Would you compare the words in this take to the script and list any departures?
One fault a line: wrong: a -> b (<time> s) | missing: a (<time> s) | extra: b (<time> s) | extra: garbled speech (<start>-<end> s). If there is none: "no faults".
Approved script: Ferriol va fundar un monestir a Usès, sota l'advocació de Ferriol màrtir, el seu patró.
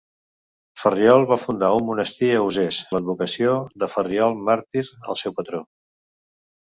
missing: sota (2.8 s)